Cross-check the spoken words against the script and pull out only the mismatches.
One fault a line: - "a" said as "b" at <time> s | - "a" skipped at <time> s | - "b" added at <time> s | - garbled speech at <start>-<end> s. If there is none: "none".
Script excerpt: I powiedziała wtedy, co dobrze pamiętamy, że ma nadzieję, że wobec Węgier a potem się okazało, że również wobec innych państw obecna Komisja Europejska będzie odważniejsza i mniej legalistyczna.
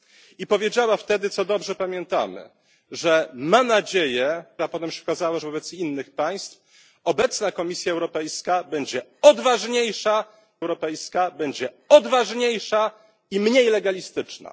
- "że wobec Węgier" skipped at 4.4 s
- "że również" skipped at 5.4 s
- "Europejska będzie odważniejsza" added at 10.6 s